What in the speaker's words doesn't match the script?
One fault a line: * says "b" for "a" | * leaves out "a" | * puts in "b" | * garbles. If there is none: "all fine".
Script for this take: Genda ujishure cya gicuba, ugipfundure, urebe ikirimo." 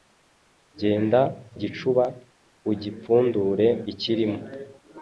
* leaves out "ujishure cya"
* leaves out "urebe"